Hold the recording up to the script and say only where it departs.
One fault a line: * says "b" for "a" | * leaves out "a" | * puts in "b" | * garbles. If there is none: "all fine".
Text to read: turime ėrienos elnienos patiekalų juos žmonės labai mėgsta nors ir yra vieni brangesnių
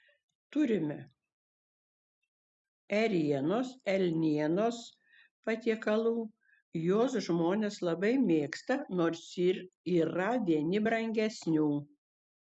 all fine